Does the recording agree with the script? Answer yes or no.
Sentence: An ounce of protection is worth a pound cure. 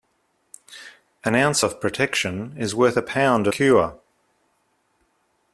yes